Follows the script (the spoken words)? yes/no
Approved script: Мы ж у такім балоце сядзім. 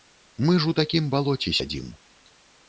yes